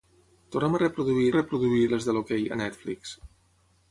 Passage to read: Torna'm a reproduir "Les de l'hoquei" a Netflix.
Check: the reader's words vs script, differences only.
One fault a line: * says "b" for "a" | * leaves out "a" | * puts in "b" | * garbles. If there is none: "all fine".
* puts in "reproduir"